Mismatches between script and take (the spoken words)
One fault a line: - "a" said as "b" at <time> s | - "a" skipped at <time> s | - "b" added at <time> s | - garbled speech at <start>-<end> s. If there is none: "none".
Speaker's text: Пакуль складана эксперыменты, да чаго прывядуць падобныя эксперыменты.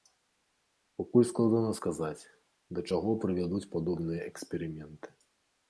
- "эксперыменты" said as "сказаць" at 1.8 s